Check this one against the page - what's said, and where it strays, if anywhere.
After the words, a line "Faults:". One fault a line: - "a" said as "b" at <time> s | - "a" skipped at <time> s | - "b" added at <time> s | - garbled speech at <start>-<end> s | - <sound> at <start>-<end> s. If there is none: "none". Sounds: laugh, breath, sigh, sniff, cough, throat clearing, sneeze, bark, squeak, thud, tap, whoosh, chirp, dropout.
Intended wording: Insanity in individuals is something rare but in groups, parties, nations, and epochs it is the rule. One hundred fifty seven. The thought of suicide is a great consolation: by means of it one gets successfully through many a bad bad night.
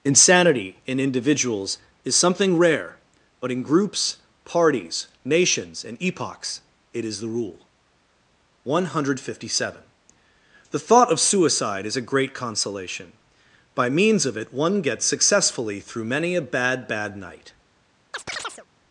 Insanity in individuals is something rare but in groups, parties, nations, and epochs it is the rule. One hundred fifty seven. The thought of suicide is a great consolation: by means of it one gets successfully through many a bad bad night.
Faults:
- chirp at 18.1-18.7 s